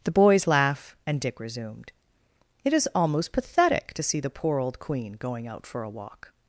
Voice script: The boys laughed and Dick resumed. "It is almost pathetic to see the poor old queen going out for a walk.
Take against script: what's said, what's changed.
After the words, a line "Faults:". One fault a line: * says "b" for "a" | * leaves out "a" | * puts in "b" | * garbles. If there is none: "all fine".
The boys laugh and Dick resumed. "It is almost pathetic to see the poor old queen going out for a walk.
Faults:
* says "laugh" for "laughed"